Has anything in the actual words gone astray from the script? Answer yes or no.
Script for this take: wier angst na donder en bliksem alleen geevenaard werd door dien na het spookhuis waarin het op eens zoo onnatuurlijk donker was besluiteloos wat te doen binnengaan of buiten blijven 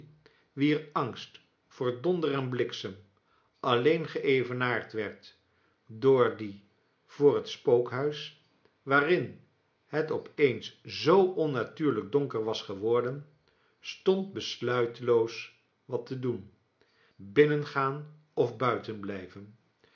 yes